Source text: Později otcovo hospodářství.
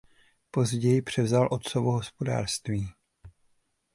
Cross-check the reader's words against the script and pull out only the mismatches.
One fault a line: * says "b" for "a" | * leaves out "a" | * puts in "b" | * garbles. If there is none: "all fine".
* puts in "převzal"